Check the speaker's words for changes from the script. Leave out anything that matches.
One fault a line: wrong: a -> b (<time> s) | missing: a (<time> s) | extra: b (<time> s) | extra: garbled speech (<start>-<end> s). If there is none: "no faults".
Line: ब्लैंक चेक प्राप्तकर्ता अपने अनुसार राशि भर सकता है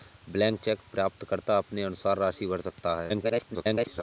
extra: garbled speech (3.1-4.0 s)